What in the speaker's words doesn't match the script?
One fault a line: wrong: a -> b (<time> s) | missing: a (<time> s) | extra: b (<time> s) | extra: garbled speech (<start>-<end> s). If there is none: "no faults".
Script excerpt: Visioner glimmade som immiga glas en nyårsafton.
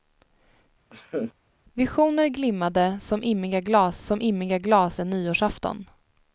extra: som immiga glas (4.0 s)